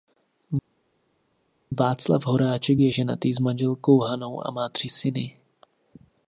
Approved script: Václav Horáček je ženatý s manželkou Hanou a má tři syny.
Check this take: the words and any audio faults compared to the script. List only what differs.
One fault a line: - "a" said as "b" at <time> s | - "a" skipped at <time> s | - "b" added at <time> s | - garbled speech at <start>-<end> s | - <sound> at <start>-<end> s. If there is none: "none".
none